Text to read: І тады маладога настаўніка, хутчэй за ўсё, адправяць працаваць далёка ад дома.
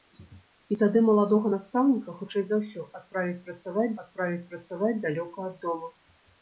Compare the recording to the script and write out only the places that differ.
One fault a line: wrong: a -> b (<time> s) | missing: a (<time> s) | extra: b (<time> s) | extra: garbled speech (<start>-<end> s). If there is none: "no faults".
extra: адправяць працаваць (4.0 s)